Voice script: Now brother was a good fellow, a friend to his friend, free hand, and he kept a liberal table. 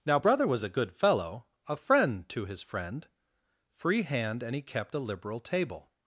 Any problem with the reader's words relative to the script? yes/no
no